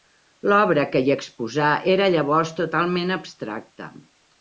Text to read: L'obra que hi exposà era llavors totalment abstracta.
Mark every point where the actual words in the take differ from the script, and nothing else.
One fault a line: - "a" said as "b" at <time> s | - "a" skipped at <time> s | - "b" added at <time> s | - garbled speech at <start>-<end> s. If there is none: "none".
none